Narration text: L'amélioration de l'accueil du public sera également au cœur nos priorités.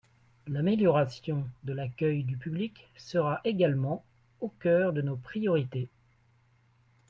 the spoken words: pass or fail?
fail